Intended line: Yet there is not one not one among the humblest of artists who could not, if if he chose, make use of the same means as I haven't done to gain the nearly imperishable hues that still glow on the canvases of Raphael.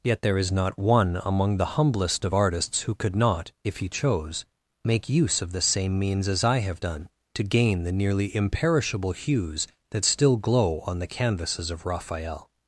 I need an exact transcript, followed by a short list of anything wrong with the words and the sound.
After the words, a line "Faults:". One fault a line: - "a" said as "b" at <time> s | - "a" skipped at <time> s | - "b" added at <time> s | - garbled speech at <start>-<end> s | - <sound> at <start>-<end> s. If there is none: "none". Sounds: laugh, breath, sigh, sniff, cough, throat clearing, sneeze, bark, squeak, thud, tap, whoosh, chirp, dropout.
Yet there is not one among the humblest of artists who could not, if he chose, make use of the same means as I have done to gain the nearly imperishable hues that still glow on the canvases of Raphael.
Faults:
- "not one" skipped at 1.2 s
- "if" skipped at 3.8 s
- "haven't" said as "have" at 6.6 s